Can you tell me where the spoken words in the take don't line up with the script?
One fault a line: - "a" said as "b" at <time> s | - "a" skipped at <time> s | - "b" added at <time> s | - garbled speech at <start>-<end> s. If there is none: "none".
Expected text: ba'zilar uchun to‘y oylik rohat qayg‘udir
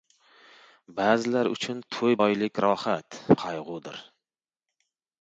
none